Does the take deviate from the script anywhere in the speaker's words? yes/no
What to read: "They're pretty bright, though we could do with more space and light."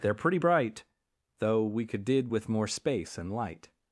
yes